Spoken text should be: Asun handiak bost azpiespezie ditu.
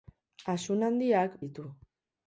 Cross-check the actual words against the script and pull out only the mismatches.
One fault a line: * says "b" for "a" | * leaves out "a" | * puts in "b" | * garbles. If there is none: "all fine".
* leaves out "bost azpiespezie"